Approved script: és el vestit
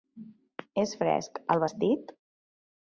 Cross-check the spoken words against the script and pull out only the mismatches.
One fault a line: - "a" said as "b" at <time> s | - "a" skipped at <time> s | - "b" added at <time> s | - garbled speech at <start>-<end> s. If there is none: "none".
- "fresc" added at 1.0 s